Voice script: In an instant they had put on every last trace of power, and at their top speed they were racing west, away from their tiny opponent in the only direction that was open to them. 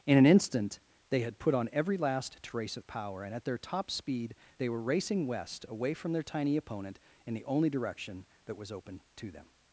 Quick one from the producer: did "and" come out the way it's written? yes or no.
yes